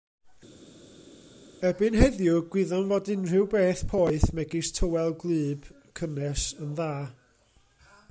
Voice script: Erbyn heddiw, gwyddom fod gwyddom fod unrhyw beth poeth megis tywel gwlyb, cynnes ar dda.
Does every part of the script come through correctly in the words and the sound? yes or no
no